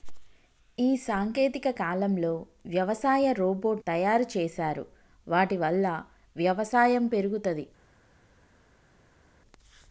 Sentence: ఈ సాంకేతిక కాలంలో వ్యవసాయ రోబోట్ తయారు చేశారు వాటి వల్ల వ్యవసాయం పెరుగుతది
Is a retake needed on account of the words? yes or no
no